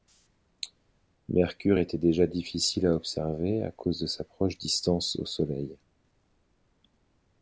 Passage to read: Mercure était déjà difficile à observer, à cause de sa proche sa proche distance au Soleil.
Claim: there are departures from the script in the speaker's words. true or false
true